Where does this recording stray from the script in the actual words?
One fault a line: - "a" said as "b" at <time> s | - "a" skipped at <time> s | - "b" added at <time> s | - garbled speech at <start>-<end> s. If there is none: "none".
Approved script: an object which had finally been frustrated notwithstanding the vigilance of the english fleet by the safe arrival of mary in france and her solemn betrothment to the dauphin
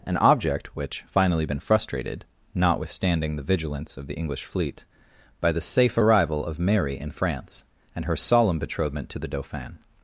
- "had" skipped at 1.1 s